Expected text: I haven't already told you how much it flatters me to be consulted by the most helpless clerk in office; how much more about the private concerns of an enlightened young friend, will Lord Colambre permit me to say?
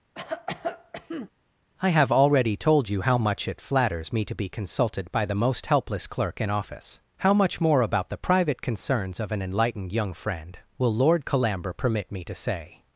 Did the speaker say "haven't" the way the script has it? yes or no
no